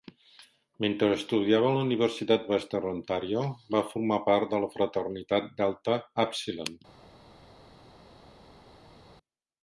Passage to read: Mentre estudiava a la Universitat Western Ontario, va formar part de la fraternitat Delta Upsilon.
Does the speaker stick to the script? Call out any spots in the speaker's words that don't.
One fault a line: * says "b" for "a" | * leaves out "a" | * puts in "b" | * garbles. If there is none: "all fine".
all fine